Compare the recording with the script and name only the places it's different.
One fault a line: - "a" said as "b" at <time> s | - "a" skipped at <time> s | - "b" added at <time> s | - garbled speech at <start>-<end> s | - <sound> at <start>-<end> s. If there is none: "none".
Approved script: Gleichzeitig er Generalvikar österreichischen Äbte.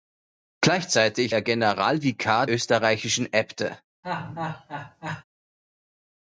- laugh at 4.0-5.2 s